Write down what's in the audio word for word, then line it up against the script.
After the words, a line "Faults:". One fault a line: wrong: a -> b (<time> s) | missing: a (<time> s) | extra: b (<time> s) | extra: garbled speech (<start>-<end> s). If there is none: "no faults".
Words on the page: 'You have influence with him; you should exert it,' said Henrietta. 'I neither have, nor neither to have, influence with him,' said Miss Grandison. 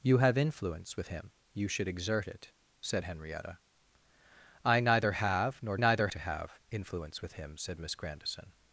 'You have influence with him; you should exert it,' said Henrietta. 'I neither have, nor neither to have, influence with him,' said Miss Grandison.
Faults:
no faults